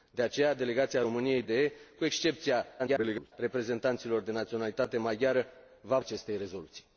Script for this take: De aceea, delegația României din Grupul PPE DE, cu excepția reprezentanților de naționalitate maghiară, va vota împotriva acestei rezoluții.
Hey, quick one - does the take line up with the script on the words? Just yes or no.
no